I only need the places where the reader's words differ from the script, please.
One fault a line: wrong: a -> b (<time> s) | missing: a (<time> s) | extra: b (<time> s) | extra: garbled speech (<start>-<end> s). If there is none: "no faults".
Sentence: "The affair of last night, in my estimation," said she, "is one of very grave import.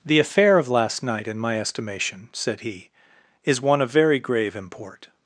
wrong: she -> he (2.6 s)